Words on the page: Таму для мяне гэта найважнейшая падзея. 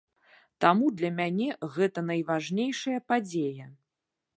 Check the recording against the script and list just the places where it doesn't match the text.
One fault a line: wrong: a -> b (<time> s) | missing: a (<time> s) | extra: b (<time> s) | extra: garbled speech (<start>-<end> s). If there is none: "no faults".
no faults